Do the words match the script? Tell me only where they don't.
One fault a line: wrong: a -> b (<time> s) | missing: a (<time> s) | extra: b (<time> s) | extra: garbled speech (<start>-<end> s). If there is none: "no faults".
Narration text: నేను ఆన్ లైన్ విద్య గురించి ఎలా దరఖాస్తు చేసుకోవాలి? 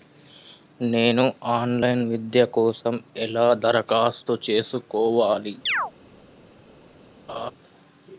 wrong: గురించి -> కోసం (2.5 s)